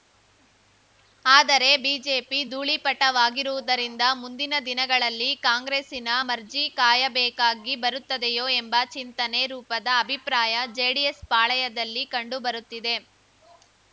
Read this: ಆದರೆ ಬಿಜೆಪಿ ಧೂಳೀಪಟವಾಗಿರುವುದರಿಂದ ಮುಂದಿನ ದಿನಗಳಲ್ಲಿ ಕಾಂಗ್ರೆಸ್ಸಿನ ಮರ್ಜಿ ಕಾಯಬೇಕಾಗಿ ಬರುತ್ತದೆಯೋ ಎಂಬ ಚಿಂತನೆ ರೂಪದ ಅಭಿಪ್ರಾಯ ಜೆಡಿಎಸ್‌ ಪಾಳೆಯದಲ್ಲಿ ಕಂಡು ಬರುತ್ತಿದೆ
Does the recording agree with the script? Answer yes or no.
yes